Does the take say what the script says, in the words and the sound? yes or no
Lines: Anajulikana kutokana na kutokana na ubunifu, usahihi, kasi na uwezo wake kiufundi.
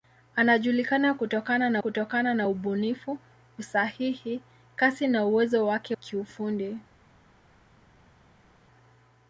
yes